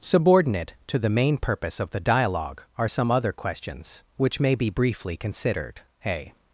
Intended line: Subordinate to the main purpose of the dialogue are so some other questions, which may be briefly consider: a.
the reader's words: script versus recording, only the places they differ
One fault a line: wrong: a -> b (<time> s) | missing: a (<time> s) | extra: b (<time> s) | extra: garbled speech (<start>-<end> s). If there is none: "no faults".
missing: so (2.9 s)
wrong: consider -> considered (5.2 s)